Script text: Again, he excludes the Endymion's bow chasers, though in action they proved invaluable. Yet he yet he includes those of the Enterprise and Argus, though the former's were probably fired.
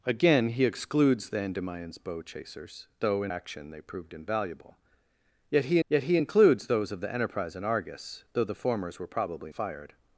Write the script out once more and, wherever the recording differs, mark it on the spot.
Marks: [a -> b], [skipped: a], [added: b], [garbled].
Again, he excludes the Endymion's bow chasers, though in action they proved invaluable. Yet he yet he includes those of the Enterprise and Argus, though the former's were probably fired.